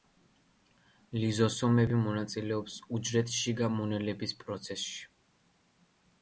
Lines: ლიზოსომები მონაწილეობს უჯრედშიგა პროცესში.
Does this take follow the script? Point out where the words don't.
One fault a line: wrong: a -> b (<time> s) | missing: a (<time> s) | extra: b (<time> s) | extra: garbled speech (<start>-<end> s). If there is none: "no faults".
extra: მონელების (3.8 s)